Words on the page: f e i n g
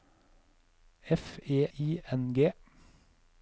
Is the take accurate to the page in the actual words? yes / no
yes